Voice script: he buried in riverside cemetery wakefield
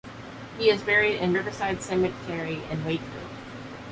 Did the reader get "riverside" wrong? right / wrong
right